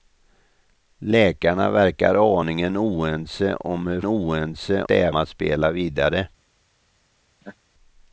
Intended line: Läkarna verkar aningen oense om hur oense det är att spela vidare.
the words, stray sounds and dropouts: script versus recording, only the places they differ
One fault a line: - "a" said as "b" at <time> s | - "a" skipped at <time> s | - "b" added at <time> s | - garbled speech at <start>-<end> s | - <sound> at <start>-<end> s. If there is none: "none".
- laugh at 7.4-7.6 s